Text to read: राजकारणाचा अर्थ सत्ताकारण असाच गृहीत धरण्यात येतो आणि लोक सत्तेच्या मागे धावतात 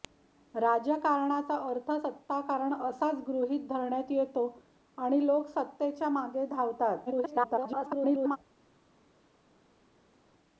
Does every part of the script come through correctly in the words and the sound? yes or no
no